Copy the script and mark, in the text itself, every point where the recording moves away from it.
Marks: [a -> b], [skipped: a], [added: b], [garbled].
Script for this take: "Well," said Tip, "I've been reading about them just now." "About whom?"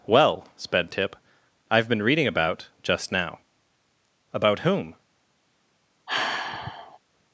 "Well," [said -> sped] Tip, "I've been reading about [skipped: them] just now." "About whom?"